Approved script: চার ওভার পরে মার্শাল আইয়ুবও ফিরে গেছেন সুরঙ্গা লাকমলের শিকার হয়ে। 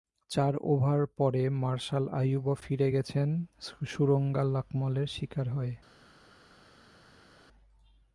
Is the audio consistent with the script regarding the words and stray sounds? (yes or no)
yes